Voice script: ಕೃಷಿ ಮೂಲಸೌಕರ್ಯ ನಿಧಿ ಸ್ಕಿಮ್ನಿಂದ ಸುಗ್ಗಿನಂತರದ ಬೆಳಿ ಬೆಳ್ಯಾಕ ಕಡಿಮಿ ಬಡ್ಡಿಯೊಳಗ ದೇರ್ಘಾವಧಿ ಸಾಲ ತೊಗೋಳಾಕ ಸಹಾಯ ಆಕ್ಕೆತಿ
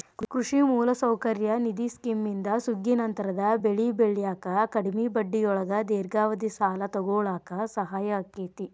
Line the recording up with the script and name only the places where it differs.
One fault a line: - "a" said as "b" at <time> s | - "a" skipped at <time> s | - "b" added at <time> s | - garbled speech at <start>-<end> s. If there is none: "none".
none